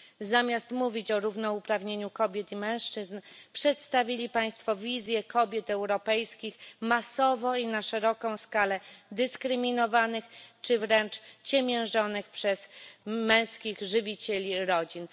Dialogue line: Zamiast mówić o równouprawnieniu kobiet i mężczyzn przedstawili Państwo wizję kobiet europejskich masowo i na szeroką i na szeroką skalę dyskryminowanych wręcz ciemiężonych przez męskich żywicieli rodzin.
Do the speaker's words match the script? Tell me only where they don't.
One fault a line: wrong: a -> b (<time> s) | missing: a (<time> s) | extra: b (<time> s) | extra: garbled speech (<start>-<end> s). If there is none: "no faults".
missing: i na szeroką (8.4 s)
extra: czy (10.6 s)